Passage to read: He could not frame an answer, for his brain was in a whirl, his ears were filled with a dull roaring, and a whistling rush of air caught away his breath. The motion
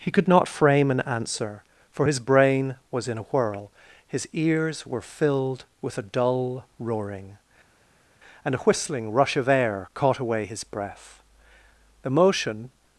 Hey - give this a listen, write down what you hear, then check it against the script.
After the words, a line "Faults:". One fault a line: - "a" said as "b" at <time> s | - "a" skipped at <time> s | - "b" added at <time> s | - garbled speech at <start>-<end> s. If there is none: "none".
He could not frame an answer, for his brain was in a whirl, his ears were filled with a dull roaring, and a whistling rush of air caught away his breath. The motion
Faults:
none